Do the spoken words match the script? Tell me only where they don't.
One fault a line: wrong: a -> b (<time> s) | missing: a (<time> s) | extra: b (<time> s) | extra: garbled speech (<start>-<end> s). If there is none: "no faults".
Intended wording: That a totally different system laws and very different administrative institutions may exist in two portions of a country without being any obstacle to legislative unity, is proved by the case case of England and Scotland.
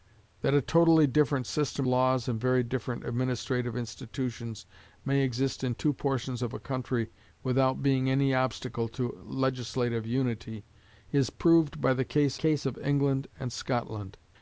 no faults